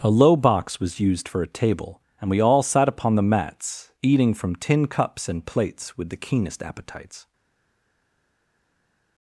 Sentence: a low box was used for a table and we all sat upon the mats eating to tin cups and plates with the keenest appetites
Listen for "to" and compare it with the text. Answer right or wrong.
wrong